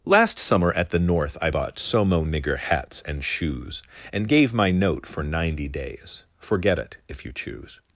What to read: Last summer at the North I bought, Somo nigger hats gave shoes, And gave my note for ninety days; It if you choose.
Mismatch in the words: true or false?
true